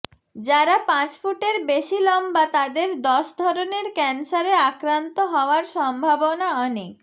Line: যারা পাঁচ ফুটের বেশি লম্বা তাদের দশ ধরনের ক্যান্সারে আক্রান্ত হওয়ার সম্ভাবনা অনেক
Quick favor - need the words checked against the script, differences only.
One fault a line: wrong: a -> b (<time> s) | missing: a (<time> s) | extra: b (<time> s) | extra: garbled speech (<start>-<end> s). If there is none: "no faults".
no faults